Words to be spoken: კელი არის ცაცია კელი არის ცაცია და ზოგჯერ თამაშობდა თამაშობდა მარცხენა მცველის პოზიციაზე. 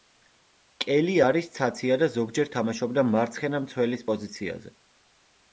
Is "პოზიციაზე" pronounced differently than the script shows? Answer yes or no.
no